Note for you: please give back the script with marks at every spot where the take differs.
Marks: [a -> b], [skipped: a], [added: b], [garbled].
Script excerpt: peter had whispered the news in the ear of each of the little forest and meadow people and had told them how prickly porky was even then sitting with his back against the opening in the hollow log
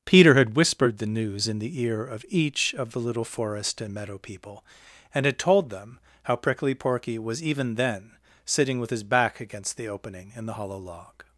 peter had whispered the news in the ear of each of the little forest and meadow people and had told them how prickly porky was even then sitting with his back against the opening in the hollow log